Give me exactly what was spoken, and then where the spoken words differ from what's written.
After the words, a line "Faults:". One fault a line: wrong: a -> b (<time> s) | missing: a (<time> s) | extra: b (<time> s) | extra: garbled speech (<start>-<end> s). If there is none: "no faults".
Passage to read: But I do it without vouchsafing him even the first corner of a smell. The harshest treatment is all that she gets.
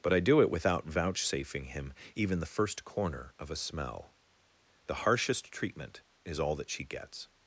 But I do it without vouchsafing him even the first corner of a smell. The harshest treatment is all that she gets.
Faults:
no faults